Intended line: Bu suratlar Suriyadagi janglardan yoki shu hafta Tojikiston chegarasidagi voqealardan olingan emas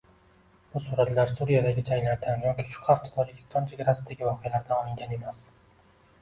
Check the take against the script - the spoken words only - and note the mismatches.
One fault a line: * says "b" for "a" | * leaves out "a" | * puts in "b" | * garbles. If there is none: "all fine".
all fine